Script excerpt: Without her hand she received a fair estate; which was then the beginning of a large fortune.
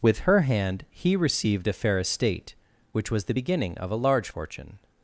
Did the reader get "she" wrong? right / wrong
wrong